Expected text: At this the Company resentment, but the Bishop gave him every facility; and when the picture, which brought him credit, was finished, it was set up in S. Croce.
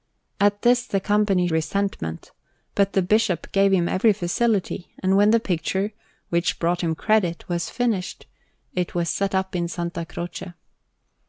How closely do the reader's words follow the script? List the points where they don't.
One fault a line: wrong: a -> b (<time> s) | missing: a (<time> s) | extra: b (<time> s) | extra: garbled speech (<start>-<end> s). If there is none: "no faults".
no faults